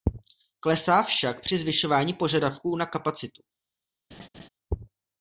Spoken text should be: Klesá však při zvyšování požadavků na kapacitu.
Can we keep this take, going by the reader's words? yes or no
yes